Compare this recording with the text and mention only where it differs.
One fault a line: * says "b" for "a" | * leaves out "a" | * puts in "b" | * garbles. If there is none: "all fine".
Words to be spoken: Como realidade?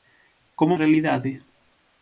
all fine